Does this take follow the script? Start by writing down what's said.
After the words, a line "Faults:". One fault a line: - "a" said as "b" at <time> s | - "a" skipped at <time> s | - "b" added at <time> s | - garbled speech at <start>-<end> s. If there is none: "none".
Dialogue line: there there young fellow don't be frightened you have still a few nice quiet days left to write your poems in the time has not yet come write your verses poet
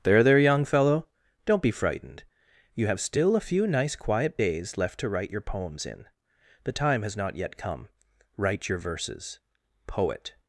there there young fellow don't be frightened you have still a few nice quiet days left to write your poems in the time has not yet come write your verses poet
Faults:
none